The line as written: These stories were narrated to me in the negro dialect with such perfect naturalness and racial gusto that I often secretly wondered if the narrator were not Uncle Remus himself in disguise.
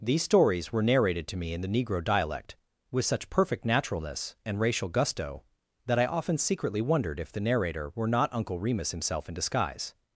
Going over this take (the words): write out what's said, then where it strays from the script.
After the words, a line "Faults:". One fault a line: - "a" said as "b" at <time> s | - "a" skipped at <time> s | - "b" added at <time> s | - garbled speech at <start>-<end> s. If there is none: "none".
These stories were narrated to me in the negro dialect with such perfect naturalness and racial gusto that I often secretly wondered if the narrator were not Uncle Remus himself in disguise.
Faults:
none